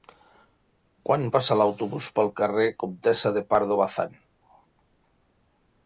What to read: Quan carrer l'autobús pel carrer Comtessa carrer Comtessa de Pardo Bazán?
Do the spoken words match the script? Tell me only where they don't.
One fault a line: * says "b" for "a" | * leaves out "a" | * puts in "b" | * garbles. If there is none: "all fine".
* says "passa" for "carrer"
* leaves out "carrer Comtessa"